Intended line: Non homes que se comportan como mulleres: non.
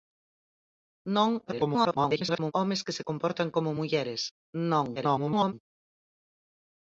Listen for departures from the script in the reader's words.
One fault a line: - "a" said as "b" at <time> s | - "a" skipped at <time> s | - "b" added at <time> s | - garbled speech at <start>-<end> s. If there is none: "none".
- garbled speech at 1.5-2.5 s
- garbled speech at 5.0-5.5 s